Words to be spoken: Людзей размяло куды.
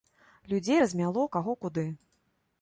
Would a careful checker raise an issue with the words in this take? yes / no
yes